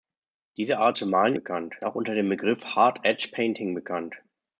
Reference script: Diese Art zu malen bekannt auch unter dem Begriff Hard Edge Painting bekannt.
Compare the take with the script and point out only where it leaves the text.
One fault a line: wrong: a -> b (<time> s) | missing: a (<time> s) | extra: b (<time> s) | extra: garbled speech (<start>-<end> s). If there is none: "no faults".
no faults